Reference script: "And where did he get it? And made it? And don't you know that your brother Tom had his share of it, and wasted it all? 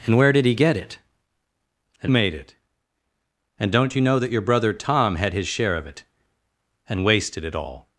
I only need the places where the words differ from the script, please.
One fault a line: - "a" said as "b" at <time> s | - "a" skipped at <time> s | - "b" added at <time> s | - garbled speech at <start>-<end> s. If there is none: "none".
none